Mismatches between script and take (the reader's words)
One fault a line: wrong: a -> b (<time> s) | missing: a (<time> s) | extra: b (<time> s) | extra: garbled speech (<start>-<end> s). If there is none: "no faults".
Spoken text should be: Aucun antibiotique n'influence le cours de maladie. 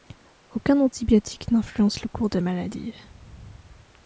no faults